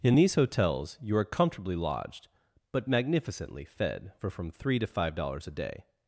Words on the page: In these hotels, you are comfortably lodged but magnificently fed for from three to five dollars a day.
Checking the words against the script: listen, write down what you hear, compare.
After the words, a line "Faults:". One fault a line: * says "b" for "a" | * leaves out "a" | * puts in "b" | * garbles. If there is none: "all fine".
In these hotels, you are comfortably lodged but magnificently fed for from three to five dollars a day.
Faults:
all fine